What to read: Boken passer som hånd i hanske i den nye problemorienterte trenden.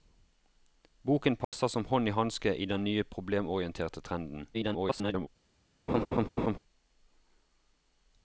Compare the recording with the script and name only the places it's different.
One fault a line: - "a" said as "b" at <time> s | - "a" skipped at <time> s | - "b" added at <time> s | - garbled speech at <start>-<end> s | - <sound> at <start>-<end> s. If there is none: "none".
- dropout at 1.4-1.5 s
- garbled speech at 4.5-5.3 s
- laugh at 5.9-6.6 s